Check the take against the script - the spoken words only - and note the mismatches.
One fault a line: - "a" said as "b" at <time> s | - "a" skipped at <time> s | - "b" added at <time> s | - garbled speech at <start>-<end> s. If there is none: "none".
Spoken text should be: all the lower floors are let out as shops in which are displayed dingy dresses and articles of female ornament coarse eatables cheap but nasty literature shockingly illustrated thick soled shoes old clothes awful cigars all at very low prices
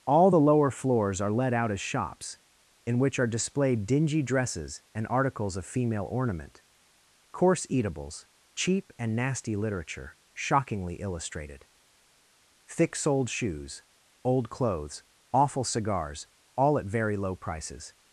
- "but" said as "and" at 9.0 s